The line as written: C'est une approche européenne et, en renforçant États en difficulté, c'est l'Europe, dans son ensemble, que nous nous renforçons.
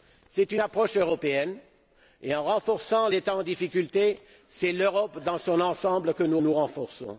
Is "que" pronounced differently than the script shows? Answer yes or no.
no